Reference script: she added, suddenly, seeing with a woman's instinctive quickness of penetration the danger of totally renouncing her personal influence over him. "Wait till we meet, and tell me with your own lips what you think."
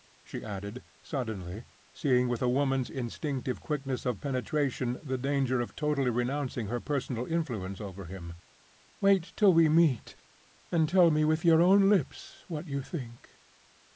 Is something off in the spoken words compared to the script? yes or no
no